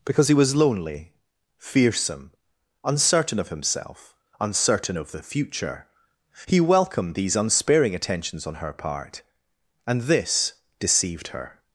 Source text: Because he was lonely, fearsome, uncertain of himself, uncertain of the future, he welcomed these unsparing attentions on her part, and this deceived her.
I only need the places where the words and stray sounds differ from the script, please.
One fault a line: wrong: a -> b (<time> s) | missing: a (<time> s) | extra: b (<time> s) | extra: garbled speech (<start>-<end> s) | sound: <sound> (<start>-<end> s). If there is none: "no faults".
no faults